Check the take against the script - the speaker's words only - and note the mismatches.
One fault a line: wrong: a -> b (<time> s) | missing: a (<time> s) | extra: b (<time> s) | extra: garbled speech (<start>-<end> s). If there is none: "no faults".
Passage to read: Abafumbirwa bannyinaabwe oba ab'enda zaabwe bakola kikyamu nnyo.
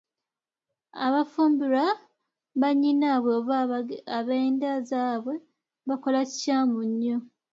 no faults